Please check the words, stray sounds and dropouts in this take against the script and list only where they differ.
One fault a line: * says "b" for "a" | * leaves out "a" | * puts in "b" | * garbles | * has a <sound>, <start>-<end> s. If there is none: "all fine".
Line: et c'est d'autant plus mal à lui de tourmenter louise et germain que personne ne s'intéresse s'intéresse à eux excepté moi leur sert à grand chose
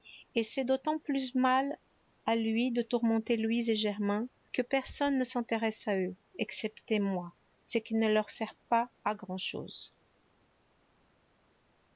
* leaves out "s'intéresse"
* puts in "ce qui ne"
* puts in "pas"